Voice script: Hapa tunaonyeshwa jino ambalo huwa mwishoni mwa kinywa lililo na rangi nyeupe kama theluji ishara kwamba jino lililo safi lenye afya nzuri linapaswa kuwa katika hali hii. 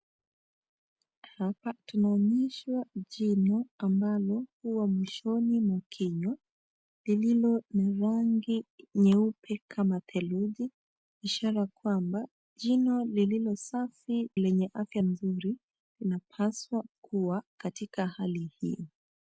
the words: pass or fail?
pass